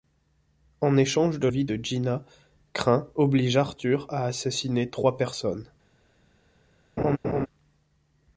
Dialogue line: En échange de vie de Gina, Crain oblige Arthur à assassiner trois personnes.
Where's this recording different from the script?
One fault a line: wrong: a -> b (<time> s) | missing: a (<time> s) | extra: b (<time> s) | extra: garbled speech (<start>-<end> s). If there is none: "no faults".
no faults